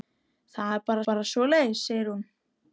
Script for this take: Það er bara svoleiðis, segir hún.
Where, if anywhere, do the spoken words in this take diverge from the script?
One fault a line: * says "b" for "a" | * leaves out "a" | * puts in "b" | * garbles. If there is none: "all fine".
* puts in "bara"